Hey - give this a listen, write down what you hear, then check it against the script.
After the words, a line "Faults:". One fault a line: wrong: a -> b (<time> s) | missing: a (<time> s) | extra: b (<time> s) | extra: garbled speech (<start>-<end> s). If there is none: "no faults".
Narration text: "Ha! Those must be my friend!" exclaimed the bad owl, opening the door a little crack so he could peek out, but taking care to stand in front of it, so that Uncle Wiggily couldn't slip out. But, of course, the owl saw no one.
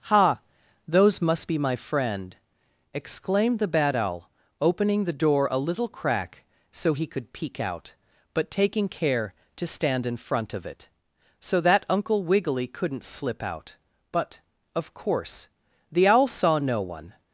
"Ha! Those must be my friend!" exclaimed the bad owl, opening the door a little crack so he could peek out, but taking care to stand in front of it, so that Uncle Wiggily couldn't slip out. But, of course, the owl saw no one.
Faults:
no faults